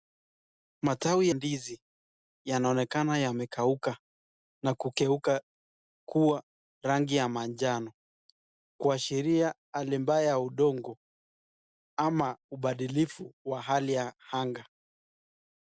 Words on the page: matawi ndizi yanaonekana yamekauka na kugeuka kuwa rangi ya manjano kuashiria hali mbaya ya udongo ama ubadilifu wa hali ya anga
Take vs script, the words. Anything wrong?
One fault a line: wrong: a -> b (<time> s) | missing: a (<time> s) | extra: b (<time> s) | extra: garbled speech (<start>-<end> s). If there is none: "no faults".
no faults